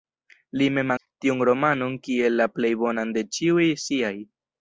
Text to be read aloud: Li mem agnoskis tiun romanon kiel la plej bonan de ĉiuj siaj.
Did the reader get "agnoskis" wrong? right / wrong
wrong